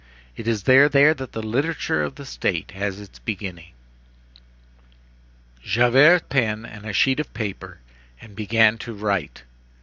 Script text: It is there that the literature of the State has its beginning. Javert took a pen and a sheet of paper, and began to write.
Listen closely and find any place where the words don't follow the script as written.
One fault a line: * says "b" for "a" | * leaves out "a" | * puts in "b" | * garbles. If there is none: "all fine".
* puts in "there"
* leaves out "took"